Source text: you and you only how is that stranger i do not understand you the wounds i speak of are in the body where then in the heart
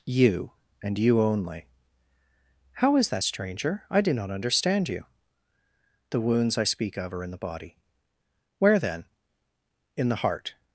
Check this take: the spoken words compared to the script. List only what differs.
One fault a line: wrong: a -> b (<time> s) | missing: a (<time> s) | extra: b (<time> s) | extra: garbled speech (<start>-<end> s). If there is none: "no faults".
no faults